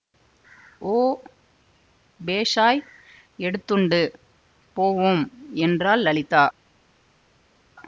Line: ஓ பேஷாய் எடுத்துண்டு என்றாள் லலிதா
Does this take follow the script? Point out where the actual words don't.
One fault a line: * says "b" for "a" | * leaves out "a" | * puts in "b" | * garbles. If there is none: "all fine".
* puts in "போவோம்"